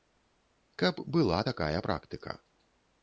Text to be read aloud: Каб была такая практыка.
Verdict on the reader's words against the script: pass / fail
pass